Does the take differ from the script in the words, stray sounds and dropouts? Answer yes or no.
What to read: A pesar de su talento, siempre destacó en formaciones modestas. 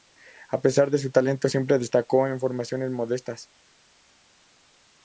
no